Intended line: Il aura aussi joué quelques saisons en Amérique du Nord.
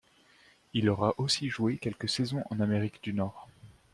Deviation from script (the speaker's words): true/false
false